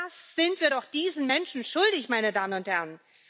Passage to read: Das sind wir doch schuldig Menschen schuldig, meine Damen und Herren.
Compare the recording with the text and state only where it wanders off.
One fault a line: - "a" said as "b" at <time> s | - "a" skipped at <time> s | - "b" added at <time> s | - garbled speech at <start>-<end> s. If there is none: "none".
- "schuldig" said as "diesen" at 0.8 s